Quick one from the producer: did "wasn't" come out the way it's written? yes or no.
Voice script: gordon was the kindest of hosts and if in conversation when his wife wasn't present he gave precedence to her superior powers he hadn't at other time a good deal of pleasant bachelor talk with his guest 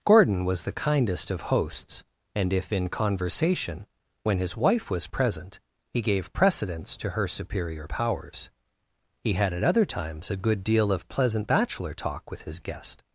no